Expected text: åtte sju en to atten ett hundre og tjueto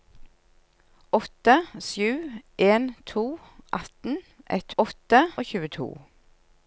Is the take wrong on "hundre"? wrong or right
wrong